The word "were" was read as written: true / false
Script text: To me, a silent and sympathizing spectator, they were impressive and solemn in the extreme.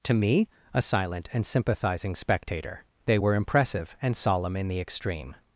true